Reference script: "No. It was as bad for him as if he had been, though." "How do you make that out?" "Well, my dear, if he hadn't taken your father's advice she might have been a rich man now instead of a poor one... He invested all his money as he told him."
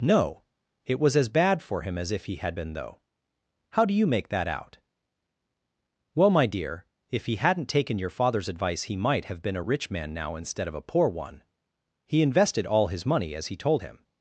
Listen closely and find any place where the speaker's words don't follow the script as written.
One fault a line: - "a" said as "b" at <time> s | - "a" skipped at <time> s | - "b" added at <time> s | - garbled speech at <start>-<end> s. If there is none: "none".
- "she" said as "he" at 8.8 s